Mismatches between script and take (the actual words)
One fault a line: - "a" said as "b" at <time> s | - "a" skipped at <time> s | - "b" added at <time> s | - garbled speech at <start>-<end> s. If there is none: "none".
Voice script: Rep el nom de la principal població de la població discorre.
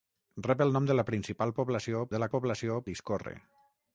none